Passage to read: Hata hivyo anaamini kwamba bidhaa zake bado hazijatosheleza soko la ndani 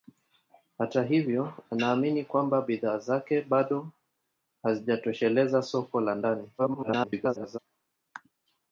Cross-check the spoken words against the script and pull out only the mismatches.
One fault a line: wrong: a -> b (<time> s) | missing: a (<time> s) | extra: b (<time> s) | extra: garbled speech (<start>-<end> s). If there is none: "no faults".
extra: garbled speech (6.6-7.6 s)